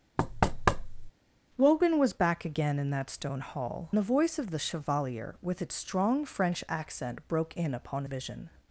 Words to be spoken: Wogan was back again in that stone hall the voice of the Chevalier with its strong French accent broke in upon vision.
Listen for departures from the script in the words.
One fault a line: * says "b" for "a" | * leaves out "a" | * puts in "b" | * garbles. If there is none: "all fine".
all fine